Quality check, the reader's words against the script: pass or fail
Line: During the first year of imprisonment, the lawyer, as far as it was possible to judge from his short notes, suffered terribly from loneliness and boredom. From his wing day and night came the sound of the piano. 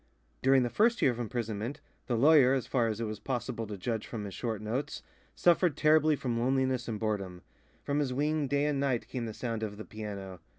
pass